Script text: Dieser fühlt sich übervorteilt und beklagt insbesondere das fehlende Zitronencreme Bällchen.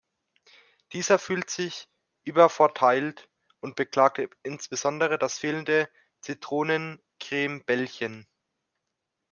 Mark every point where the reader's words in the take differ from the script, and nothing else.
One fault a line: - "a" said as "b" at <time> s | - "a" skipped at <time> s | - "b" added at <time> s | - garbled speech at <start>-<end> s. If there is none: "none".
none